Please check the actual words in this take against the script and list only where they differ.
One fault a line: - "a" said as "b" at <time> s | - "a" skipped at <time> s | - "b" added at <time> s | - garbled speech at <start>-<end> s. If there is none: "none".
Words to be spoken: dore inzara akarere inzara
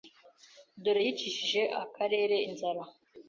- "inzara" said as "yicishije" at 1.0 s